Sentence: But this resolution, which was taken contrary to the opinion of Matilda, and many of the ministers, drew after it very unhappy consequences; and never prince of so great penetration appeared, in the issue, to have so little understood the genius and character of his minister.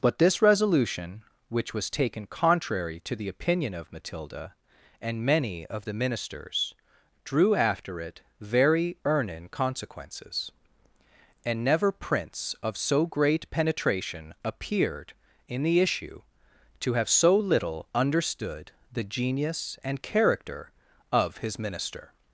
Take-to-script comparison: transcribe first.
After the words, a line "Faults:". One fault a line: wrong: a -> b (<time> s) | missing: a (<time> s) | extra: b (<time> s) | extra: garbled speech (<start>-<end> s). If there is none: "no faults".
But this resolution, which was taken contrary to the opinion of Matilda, and many of the ministers, drew after it very earnin consequences; and never prince of so great penetration appeared, in the issue, to have so little understood the genius and character of his minister.
Faults:
wrong: unhappy -> earnin (9.1 s)